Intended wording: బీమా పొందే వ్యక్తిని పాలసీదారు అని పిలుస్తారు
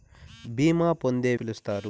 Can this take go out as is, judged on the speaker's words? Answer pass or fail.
fail